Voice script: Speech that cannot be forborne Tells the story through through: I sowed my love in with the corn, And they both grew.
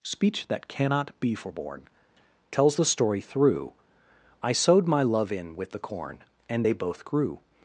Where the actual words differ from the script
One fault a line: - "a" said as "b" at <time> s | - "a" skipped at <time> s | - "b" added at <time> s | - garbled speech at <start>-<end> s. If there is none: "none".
- "through" skipped at 3.7 s